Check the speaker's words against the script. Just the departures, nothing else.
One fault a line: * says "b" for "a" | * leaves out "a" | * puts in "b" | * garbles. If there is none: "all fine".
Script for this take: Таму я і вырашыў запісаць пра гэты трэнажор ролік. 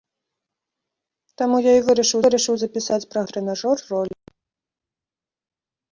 * puts in "вырашыў"
* leaves out "гэты"